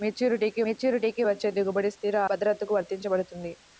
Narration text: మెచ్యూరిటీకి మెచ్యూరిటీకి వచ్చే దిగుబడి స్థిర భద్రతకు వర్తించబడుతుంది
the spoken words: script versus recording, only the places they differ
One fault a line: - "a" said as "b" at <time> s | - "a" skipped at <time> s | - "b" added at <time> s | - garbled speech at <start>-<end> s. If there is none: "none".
none